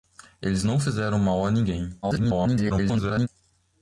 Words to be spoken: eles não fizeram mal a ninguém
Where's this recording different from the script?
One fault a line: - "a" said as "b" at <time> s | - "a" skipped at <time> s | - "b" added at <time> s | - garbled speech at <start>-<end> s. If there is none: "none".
- garbled speech at 2.0-3.3 s